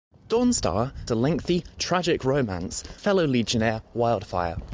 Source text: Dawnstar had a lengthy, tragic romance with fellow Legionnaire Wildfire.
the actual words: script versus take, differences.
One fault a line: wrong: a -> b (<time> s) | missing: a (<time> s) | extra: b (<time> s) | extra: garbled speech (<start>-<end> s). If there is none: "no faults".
missing: had (0.9 s)
missing: with (2.8 s)